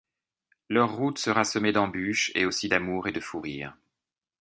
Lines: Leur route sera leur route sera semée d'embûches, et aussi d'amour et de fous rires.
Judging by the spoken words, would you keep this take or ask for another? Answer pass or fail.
fail